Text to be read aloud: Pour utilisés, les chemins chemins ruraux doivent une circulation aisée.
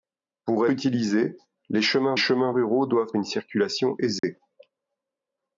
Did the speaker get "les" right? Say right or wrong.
right